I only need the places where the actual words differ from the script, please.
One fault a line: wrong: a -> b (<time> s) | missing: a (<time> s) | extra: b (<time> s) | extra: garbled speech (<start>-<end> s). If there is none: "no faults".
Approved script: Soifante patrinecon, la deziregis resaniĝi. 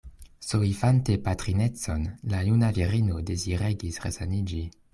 extra: juna virino (2.5 s)